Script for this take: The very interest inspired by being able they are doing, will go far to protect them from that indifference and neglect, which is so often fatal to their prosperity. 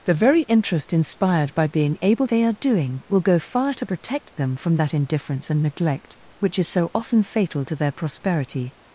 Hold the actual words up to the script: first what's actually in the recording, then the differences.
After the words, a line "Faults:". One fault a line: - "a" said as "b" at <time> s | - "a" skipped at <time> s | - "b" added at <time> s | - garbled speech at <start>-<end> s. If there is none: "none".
The very interest inspired by being able they are doing, will go far to protect them from that indifference and neglect, which is so often fatal to their prosperity.
Faults:
none